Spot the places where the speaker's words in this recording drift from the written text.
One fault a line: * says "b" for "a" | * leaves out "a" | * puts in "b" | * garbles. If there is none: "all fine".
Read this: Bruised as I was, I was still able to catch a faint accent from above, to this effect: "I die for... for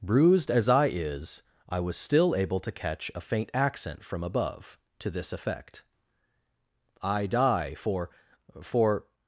* says "is" for "was"